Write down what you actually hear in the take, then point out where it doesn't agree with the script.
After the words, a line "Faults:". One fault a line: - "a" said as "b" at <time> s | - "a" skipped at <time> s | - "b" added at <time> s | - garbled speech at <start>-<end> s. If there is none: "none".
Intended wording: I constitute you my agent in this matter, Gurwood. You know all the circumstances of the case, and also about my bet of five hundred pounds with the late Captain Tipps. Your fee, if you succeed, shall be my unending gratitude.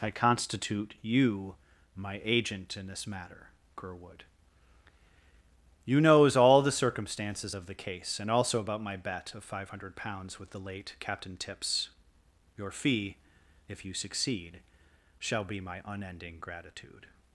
I constitute you my agent in this matter, Gurwood. You knows all the circumstances of the case, and also about my bet of five hundred pounds with the late Captain Tipps. Your fee, if you succeed, shall be my unending gratitude.
Faults:
- "know" said as "knows" at 6.0 s